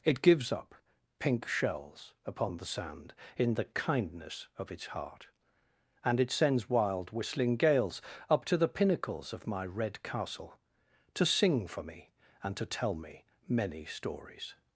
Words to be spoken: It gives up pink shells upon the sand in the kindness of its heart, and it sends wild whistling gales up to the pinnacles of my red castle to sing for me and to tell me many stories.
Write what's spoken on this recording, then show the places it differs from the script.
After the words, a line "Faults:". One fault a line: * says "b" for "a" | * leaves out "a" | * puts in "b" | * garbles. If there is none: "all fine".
It gives up pink shells upon the sand in the kindness of its heart, and it sends wild whistling gales up to the pinnacles of my red castle to sing for me and to tell me many stories.
Faults:
all fine